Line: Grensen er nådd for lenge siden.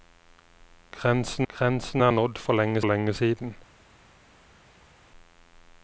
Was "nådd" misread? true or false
false